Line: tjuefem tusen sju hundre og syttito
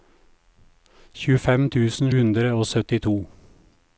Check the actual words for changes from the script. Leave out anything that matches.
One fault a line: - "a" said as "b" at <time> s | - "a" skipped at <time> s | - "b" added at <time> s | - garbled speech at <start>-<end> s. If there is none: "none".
- "sju" skipped at 2.1 s